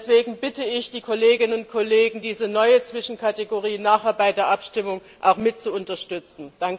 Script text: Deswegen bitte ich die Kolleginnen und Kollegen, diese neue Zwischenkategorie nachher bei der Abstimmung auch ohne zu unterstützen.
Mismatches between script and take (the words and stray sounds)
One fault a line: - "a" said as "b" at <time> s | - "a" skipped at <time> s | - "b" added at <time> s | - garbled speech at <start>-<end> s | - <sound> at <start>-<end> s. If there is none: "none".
- "ohne" said as "mit" at 5.4 s